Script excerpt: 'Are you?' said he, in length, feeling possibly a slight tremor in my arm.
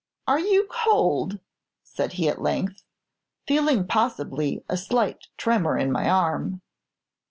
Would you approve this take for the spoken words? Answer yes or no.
no